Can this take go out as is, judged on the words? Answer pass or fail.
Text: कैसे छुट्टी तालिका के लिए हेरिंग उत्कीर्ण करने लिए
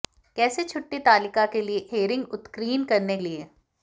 pass